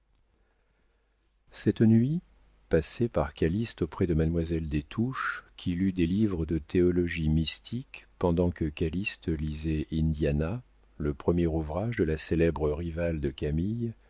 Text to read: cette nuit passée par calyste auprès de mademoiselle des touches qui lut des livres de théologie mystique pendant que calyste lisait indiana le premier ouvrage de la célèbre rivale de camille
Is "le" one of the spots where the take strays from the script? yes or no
no